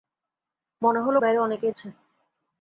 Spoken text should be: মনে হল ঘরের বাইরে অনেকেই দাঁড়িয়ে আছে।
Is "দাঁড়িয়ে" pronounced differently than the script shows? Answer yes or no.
yes